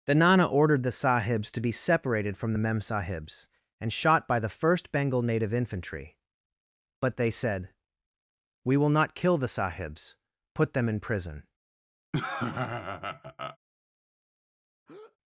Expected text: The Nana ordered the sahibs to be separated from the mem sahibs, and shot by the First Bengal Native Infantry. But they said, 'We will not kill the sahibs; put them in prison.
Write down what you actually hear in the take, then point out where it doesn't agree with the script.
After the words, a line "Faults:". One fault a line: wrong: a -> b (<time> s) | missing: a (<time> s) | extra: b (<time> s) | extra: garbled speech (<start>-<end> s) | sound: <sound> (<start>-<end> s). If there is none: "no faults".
The Nana ordered the sahibs to be separated from the mem sahibs, and shot by the First Bengal Native Infantry. But they said, 'We will not kill the sahibs; put them in prison.
Faults:
sound: laugh (12.1-13.6 s)
sound: breath (14.9-15.2 s)